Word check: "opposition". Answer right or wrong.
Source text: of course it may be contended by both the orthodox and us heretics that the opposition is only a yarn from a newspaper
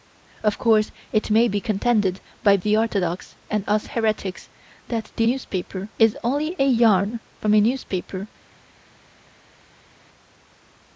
wrong